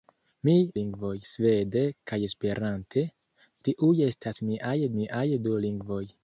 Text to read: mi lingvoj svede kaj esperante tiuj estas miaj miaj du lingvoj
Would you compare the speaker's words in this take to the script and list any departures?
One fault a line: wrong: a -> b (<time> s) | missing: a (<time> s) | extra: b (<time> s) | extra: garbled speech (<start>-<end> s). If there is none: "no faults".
no faults